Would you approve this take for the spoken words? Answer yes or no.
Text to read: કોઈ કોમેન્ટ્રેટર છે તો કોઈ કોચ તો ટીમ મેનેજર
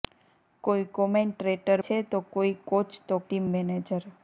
yes